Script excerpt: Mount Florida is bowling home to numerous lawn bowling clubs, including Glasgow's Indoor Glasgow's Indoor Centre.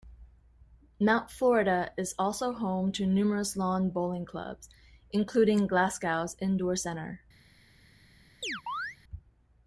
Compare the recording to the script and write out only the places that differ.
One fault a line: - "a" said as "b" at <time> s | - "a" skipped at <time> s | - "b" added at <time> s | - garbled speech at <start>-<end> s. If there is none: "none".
- "bowling" said as "also" at 2.2 s
- "Glasgow's Indoor" skipped at 6.8 s